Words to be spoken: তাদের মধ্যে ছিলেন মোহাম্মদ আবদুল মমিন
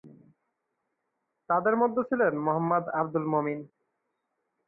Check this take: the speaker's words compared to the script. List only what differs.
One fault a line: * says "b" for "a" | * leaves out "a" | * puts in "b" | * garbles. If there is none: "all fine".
all fine